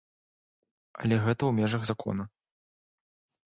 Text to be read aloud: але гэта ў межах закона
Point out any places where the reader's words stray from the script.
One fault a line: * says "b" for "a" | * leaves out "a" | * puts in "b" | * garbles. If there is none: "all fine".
all fine